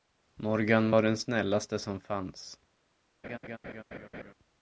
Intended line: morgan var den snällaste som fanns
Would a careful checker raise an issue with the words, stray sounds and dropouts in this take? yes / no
yes